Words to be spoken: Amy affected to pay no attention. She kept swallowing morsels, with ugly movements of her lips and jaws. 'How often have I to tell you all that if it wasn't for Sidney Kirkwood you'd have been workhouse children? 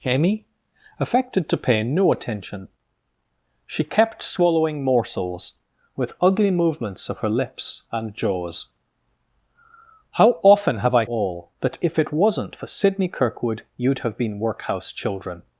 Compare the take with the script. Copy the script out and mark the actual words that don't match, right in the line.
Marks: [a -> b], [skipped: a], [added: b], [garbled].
Amy affected to pay no attention. She kept swallowing morsels, with ugly movements of her lips and jaws. 'How often have I [skipped: to tell you] all that if it wasn't for Sidney Kirkwood you'd have been workhouse children?